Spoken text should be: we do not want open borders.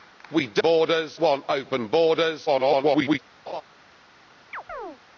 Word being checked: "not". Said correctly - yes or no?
no